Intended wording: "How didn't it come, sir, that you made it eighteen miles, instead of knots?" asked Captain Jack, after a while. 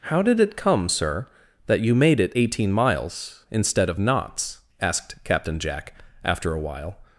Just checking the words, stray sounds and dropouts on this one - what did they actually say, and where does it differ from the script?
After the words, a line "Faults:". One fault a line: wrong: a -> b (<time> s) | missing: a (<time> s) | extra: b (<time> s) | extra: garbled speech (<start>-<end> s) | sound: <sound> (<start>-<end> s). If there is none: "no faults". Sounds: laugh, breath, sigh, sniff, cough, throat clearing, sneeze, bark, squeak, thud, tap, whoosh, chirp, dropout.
"How did it come, sir, that you made it eighteen miles, instead of knots?" asked Captain Jack, after a while.
Faults:
wrong: didn't -> did (0.2 s)